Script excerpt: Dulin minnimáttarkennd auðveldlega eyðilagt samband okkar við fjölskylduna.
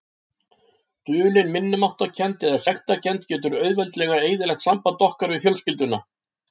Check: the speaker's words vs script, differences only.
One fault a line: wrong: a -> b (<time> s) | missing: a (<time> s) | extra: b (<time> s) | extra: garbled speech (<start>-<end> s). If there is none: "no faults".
extra: eða sektarkennd getur (2.5 s)